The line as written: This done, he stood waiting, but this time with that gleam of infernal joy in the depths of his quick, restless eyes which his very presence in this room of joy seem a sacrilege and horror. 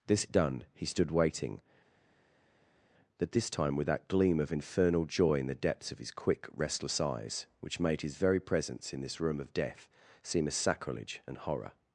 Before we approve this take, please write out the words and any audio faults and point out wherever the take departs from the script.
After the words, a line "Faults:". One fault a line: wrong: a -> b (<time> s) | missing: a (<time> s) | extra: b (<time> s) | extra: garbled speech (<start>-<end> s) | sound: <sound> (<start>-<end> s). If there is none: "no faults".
This done, he stood waiting, but this time with that gleam of infernal joy in the depths of his quick, restless eyes which made his very presence in this room of death seem a sacrilege and horror.
Faults:
extra: made (7.8 s)
wrong: joy -> death (9.5 s)